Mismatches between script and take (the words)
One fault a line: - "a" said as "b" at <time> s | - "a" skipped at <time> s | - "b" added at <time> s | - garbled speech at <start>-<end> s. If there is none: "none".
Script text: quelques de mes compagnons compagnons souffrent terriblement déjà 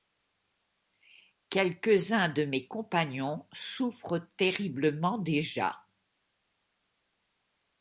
- "uns" added at 2.1 s
- "compagnons" skipped at 3.5 s